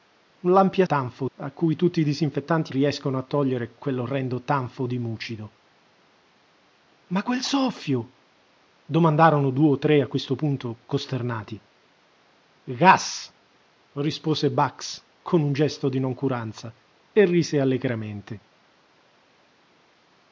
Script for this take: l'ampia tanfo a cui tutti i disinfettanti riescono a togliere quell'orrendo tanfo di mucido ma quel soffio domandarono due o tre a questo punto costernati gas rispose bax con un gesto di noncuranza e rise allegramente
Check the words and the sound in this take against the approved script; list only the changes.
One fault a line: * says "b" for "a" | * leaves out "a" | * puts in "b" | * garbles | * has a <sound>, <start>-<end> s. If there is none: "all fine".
all fine